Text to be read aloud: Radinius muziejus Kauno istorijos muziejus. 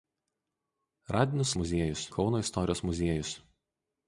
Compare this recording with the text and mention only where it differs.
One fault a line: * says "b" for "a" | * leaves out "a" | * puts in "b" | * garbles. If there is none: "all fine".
all fine